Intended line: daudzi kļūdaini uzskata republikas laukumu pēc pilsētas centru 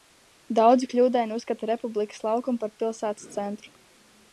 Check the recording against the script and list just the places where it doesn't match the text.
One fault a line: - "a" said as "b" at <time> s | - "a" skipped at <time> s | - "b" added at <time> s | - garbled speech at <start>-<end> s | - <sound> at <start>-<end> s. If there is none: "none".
- "pēc" said as "par" at 2.6 s